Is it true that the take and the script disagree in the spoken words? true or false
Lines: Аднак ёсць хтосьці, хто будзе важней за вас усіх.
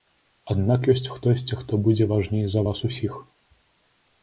false